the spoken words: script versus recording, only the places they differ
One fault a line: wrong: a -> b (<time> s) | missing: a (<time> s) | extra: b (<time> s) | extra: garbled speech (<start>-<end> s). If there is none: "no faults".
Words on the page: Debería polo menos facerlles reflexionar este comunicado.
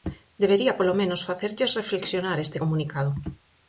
no faults